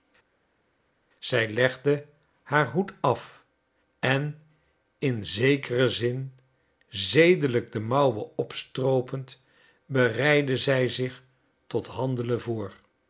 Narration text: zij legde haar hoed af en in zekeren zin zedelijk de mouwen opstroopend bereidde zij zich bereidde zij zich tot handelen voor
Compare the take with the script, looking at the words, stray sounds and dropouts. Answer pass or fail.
fail